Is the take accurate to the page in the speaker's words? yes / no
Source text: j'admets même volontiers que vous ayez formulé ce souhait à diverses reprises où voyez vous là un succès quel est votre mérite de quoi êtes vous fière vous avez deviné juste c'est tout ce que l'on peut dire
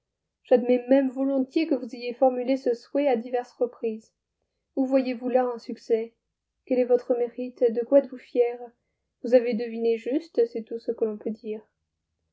yes